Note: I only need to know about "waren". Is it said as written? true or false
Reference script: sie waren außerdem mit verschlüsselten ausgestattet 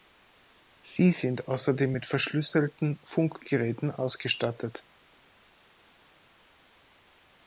false